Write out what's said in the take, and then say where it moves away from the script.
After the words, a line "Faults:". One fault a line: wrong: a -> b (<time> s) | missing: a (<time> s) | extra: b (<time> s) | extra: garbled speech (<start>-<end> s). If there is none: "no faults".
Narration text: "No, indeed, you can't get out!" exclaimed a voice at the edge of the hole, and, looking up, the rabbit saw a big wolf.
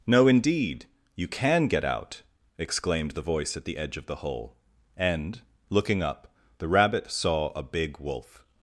"No, indeed, you can get out!" exclaimed the voice at the edge of the hole, and, looking up, the rabbit saw a big wolf.
Faults:
wrong: can't -> can (1.3 s)
wrong: a -> the (3.1 s)